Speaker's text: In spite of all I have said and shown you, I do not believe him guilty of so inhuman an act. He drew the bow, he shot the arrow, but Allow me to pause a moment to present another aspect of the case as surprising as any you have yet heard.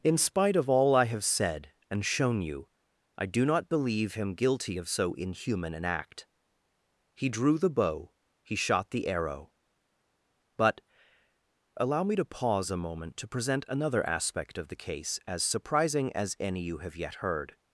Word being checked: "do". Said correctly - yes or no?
yes